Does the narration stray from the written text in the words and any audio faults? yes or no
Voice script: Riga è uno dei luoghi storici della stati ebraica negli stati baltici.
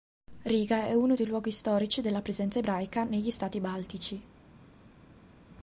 yes